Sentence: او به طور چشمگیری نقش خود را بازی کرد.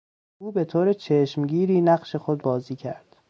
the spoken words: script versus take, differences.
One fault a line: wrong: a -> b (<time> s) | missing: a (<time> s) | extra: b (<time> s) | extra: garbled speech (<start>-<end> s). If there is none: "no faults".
missing: را (2.4 s)